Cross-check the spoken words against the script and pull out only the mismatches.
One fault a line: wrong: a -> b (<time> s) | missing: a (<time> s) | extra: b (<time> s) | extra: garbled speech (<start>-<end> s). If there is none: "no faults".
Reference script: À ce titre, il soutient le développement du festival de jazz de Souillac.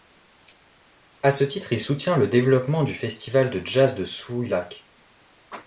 no faults